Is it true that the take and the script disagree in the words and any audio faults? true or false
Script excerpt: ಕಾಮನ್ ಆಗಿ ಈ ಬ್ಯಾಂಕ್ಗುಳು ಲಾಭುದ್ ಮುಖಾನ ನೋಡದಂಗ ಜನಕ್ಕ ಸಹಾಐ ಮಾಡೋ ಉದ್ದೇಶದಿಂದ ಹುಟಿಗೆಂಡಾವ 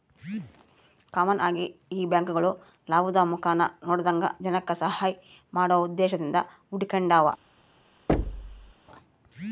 true